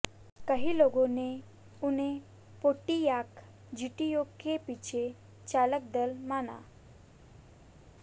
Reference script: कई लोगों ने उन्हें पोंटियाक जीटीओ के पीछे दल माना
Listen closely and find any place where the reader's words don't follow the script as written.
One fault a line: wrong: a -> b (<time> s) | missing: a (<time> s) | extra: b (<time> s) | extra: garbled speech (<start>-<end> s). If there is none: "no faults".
extra: चालक (5.5 s)